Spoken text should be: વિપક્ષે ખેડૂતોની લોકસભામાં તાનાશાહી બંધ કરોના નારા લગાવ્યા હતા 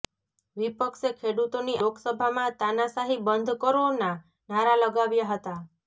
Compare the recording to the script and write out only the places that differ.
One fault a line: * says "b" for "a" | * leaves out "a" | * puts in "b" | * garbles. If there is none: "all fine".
all fine